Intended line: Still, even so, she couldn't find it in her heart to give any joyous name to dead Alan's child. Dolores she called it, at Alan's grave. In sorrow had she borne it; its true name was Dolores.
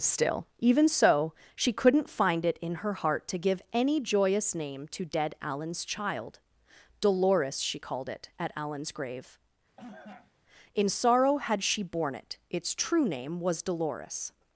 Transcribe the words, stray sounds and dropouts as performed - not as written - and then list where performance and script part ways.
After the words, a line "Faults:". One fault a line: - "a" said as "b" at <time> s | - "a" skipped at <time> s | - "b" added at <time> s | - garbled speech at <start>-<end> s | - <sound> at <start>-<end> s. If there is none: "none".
Still, even so, she couldn't find it in her heart to give any joyous name to dead Alan's child. Dolores she called it, at Alan's grave. In sorrow had she borne it; its true name was Dolores.
Faults:
- cough at 9.8-10.3 s